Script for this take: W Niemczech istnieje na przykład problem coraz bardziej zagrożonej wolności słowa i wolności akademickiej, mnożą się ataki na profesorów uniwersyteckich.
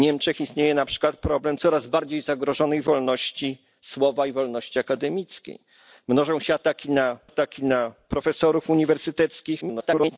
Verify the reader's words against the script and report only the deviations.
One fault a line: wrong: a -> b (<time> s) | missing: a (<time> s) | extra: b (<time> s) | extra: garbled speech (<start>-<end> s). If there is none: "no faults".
extra: ataki na (7.2 s)
extra: garbled speech (9.6-10.2 s)